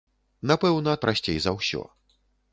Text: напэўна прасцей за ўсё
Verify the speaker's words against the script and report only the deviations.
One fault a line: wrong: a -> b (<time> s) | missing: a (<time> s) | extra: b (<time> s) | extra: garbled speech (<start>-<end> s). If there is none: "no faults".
no faults